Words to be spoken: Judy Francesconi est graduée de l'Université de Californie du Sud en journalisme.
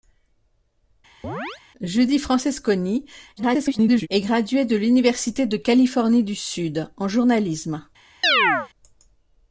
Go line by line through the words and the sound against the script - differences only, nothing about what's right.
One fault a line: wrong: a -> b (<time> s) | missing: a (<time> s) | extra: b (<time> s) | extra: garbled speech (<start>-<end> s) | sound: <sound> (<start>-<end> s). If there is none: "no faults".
sound: chirp (1.2-1.6 s)
extra: garbled speech (3.4-4.1 s)
sound: chirp (8.2-8.7 s)